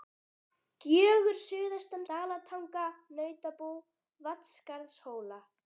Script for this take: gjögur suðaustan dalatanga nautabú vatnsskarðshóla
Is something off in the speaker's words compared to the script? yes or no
no